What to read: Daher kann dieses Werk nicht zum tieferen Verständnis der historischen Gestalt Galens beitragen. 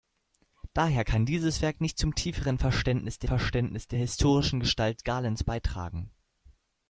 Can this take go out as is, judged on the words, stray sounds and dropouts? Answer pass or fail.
fail